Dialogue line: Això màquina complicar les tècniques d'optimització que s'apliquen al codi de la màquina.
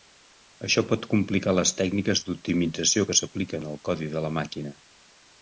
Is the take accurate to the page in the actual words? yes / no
no